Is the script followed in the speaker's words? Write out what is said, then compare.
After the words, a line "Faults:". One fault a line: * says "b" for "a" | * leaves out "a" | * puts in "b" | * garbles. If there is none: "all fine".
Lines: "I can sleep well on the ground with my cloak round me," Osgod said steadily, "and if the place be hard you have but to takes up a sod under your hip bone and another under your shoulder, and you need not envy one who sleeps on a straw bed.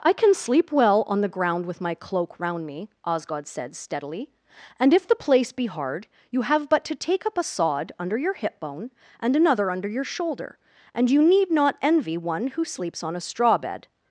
"I can sleep well on the ground with my cloak round me," Osgod said steadily, "and if the place be hard you have but to take up a sod under your hip bone and another under your shoulder, and you need not envy one who sleeps on a straw bed.
Faults:
* says "take" for "takes"